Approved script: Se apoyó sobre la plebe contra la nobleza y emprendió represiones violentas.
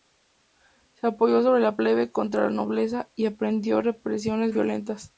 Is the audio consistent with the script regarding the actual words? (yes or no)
yes